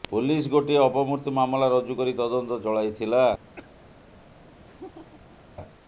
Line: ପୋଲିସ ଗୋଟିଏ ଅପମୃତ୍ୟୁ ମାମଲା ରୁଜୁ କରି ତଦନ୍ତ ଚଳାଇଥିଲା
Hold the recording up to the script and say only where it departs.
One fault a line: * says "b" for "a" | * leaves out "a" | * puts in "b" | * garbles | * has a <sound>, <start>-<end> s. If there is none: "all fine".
* has a cough, 3.6-3.9 s
* has a laugh, 4.6-5.4 s